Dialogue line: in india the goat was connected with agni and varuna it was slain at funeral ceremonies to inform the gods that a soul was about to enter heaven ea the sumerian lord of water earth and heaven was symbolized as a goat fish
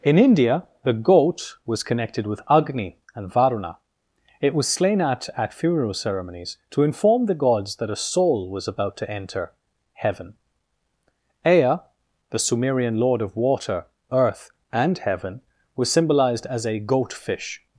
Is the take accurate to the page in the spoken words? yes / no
no